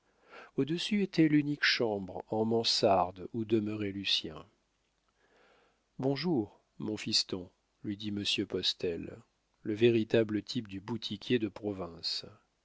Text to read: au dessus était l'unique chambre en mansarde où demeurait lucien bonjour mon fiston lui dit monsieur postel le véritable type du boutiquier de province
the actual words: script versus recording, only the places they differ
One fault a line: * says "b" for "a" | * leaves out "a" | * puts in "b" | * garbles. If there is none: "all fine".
all fine